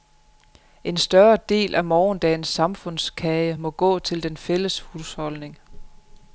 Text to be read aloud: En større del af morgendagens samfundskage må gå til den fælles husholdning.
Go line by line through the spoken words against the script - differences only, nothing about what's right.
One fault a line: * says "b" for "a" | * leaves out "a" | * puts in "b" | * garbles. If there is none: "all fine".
all fine